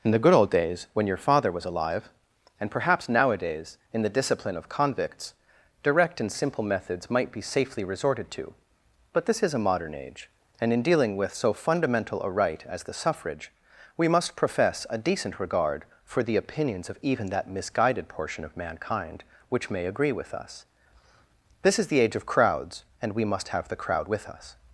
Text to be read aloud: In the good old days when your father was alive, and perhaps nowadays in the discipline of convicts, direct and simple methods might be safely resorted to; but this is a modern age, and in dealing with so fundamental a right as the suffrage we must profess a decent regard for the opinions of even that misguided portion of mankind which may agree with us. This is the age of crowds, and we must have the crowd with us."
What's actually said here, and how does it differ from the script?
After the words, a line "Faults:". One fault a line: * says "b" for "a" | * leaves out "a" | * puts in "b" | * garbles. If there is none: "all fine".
In the good old days when your father was alive, and perhaps nowadays in the discipline of convicts, direct and simple methods might be safely resorted to; but this is a modern age, and in dealing with so fundamental a right as the suffrage we must profess a decent regard for the opinions of even that misguided portion of mankind which may agree with us. This is the age of crowds, and we must have the crowd with us."
Faults:
all fine